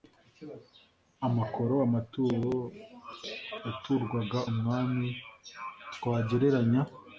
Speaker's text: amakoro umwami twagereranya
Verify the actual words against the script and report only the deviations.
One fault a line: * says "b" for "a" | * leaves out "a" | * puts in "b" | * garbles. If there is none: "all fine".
* puts in "amaturo yaturwaga"